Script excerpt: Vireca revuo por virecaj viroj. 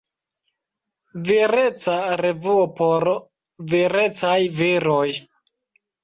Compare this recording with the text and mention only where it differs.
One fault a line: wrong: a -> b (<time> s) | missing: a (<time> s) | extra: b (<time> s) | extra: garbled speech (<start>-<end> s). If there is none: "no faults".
no faults